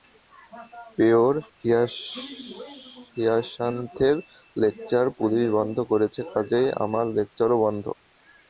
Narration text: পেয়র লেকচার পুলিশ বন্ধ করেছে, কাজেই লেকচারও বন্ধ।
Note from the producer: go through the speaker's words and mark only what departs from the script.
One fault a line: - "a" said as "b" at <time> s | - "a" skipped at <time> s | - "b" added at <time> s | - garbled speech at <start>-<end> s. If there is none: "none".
- "হিয়াসান্থের" added at 3.1 s
- "আমার" added at 6.8 s